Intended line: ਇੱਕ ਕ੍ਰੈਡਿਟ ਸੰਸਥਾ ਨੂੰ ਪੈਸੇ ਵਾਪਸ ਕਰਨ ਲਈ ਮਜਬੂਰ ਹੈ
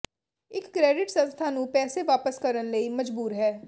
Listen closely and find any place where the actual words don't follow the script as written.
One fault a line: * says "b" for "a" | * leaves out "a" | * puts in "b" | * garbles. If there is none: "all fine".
all fine